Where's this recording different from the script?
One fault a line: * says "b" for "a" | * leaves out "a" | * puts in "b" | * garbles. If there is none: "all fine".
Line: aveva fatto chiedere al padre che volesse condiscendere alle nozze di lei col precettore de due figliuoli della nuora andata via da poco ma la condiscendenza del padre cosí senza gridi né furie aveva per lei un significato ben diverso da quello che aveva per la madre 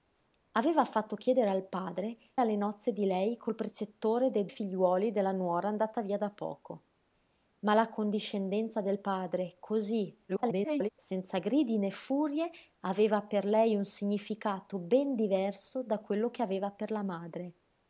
* leaves out "che volesse condiscendere"
* leaves out "due"
* garbles